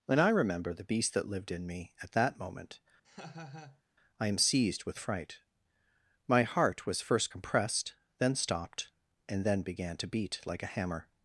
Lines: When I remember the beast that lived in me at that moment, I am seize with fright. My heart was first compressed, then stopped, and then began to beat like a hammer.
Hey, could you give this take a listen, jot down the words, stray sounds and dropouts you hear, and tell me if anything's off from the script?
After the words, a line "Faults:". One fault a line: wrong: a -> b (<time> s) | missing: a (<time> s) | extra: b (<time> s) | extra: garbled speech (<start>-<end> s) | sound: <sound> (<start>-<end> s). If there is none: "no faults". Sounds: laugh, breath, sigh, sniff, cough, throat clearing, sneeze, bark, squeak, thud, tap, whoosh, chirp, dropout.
When I remember the beast that lived in me at that moment, I am seized with fright. My heart was first compressed, then stopped, and then began to beat like a hammer.
Faults:
sound: laugh (3.0-3.8 s)
wrong: seize -> seized (4.4 s)